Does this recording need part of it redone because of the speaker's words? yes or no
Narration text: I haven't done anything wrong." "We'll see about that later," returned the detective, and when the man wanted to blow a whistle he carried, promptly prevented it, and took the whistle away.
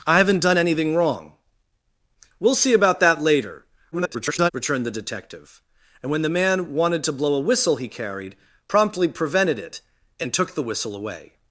yes